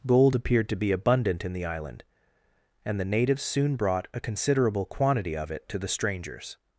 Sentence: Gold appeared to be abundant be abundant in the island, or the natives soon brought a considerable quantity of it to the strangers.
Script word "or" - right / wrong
wrong